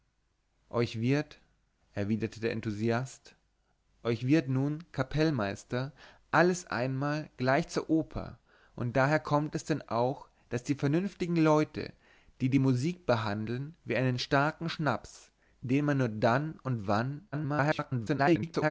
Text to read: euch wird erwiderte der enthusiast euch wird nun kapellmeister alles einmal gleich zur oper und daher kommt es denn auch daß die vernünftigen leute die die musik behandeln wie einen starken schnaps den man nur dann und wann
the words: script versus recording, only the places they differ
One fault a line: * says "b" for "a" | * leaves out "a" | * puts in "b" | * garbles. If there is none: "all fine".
* garbles